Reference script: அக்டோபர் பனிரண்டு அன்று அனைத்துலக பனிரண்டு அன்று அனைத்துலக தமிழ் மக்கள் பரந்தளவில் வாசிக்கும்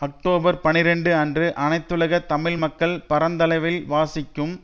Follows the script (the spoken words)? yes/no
no